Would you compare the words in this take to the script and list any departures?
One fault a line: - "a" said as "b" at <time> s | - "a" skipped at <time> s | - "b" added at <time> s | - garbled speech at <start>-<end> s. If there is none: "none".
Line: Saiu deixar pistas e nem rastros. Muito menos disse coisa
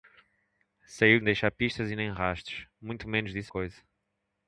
none